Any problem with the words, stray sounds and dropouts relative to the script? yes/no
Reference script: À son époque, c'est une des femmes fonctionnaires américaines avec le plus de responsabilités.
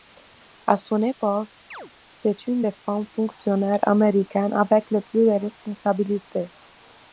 yes